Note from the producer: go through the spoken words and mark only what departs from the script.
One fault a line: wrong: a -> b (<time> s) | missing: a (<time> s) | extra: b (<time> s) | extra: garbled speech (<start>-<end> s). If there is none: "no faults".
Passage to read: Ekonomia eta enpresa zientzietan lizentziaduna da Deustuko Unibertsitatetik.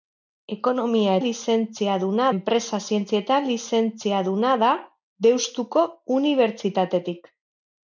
wrong: eta -> lizentziaduna (1.2 s)